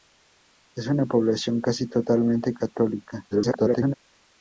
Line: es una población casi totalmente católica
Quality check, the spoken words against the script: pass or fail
fail